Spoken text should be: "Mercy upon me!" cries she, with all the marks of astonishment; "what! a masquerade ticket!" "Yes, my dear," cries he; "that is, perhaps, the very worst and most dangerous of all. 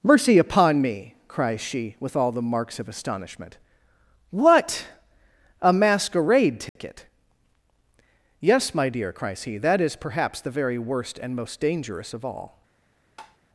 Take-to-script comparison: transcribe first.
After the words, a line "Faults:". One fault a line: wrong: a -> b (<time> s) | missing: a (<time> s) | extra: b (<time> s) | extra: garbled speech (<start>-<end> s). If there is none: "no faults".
"Mercy upon me!" cries she, with all the marks of astonishment; "what! a masquerade ticket!" "Yes, my dear," cries he; "that is, perhaps, the very worst and most dangerous of all.
Faults:
no faults